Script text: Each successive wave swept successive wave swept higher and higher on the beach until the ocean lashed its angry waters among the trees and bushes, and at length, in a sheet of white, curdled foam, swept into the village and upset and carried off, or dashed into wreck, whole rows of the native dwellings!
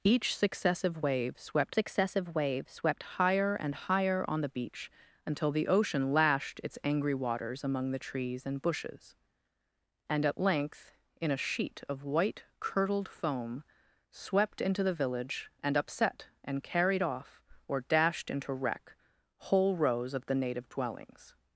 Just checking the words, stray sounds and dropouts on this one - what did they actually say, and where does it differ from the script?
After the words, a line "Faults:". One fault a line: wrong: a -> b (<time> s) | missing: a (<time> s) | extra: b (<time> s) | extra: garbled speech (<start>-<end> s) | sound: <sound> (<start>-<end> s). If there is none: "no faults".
Each successive wave swept successive wave swept higher and higher on the beach until the ocean lashed its angry waters among the trees and bushes, and at length, in a sheet of white, curdled foam, swept into the village and upset and carried off, or dashed into wreck, whole rows of the native dwellings!
Faults:
no faults